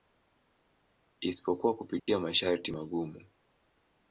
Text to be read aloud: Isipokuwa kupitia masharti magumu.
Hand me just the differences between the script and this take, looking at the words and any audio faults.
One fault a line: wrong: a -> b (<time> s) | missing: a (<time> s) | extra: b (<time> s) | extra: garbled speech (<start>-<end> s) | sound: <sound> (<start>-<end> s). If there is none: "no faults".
sound: dropout (2.0-2.1 s)